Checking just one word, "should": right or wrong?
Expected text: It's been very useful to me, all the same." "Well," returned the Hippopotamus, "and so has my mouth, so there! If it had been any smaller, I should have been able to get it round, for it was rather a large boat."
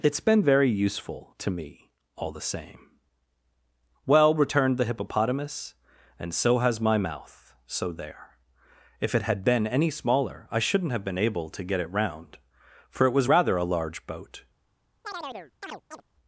wrong